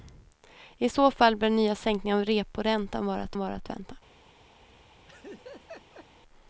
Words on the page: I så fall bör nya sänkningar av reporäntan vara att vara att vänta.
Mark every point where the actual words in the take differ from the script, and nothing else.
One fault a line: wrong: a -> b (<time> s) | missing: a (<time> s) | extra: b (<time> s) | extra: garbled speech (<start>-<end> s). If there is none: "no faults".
no faults